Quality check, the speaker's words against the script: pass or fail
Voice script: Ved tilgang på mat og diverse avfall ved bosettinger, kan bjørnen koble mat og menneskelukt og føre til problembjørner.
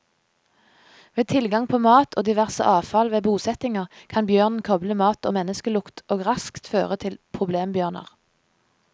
fail